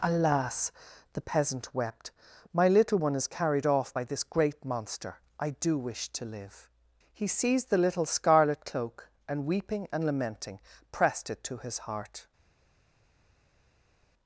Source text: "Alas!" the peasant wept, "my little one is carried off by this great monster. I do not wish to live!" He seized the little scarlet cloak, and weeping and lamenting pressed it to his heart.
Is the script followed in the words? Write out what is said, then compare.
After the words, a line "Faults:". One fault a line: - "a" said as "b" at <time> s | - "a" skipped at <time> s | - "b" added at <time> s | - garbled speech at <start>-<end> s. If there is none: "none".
"Alas!" the peasant wept, "my little one is carried off by this great monster. I do wish to live!" He seized the little scarlet cloak, and weeping and lamenting pressed it to his heart.
Faults:
- "not" skipped at 5.8 s